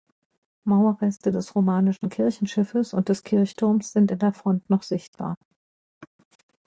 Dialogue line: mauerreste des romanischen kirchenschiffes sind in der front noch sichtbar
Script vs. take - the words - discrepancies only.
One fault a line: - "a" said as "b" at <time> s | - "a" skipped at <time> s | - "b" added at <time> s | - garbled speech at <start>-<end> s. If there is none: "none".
- "und des kirchturms" added at 2.9 s